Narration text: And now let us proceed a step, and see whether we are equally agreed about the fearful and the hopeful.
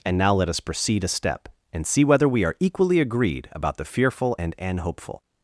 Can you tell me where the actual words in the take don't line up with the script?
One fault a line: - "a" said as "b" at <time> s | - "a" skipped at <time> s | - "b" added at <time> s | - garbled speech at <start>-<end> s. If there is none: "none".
- "the" said as "an" at 4.6 s